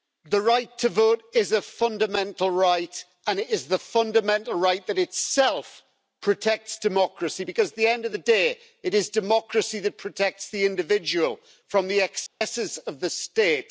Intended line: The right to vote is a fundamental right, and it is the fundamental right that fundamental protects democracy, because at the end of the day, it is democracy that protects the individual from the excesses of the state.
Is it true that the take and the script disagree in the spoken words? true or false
true